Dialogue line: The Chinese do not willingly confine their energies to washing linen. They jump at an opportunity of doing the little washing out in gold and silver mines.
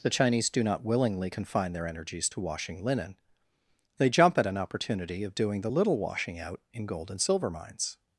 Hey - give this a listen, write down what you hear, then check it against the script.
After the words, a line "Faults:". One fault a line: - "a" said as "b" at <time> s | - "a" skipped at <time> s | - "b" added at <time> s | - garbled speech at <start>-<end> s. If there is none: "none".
The Chinese do not willingly confine their energies to washing linen. They jump at an opportunity of doing the little washing out in gold and silver mines.
Faults:
none